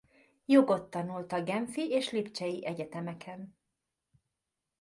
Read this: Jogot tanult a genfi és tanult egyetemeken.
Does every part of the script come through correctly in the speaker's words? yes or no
no